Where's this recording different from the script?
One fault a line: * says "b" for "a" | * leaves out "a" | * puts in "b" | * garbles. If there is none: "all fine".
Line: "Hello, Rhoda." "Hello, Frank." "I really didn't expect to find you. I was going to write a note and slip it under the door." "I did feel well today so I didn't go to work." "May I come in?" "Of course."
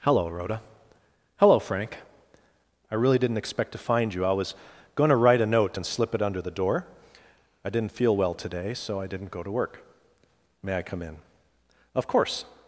* says "didn't" for "did"